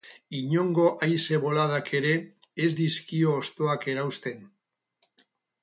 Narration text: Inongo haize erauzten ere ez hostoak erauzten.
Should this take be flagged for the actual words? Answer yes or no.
yes